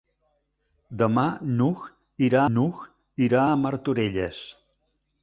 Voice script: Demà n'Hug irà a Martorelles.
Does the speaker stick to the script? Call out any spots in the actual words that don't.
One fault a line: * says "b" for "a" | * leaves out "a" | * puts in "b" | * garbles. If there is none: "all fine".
* puts in "n'Hug irà"